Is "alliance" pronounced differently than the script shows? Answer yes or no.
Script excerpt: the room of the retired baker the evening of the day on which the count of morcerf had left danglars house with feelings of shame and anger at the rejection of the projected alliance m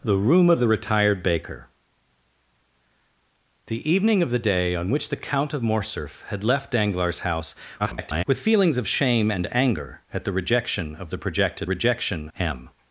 yes